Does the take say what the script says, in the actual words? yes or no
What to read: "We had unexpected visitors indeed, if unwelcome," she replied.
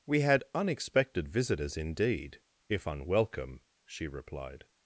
yes